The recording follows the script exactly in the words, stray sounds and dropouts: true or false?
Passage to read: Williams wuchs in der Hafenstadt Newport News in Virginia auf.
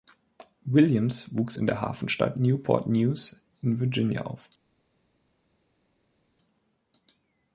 true